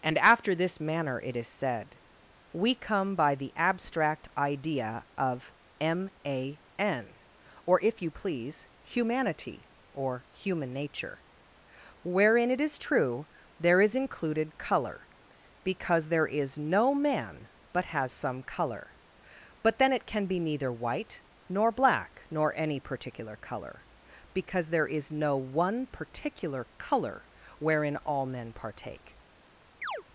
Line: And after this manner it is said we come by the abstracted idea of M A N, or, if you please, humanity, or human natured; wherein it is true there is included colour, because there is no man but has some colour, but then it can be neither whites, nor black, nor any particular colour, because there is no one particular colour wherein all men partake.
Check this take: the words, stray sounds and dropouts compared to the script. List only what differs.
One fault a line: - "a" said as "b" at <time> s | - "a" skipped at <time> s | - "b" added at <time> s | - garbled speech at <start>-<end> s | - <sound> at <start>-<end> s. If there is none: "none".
- "abstracted" said as "abstract" at 3.5 s
- "natured" said as "nature" at 10.7 s
- "whites" said as "white" at 20.7 s
- chirp at 29.8-30.0 s